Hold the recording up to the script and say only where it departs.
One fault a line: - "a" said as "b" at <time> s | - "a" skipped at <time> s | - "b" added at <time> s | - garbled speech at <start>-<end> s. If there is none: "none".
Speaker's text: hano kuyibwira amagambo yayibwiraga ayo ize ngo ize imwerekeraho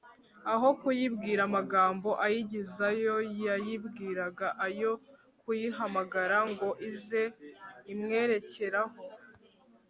- "hano" said as "aho" at 0.5 s
- "ayigizayo" added at 2.2 s
- "ize" said as "kuyihamagara" at 5.4 s